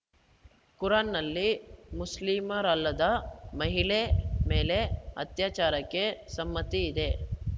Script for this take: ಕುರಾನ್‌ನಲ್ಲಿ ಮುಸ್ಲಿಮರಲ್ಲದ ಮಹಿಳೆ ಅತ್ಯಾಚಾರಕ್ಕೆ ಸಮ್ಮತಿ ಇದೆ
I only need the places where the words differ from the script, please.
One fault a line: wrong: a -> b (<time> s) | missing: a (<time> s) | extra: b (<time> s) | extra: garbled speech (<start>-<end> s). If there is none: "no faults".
extra: ಮೇಲೆ (4.5 s)